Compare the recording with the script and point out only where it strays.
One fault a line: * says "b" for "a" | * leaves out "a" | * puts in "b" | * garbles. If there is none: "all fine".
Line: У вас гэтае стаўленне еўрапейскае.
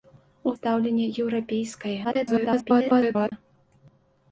* leaves out "вас гэтае"
* garbles